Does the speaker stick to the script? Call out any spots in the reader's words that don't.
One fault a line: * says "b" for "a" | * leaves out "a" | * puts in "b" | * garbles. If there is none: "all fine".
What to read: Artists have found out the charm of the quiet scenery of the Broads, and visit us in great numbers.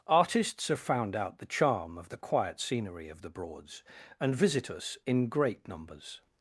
all fine